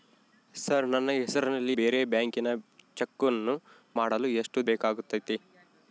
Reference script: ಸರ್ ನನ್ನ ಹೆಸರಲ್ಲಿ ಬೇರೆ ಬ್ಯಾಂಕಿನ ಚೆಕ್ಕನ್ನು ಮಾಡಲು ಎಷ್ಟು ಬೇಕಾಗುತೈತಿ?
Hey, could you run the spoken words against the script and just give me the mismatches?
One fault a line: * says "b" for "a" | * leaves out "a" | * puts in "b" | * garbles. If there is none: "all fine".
all fine